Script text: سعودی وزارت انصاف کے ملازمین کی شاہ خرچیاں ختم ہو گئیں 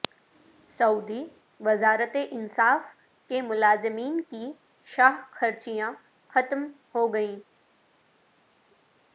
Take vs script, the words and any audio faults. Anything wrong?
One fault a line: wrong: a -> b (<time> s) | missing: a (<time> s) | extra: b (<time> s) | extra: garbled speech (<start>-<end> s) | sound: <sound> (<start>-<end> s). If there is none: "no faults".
no faults